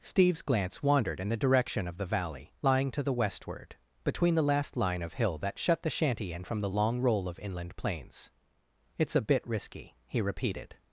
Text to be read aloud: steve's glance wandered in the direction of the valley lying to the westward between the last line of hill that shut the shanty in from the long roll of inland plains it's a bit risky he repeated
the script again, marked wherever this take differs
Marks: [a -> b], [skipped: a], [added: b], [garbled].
steve's glance wandered in the direction of the valley lying to the westward between the last line of hill that shut the shanty in from the long roll of inland plains it's a bit risky he repeated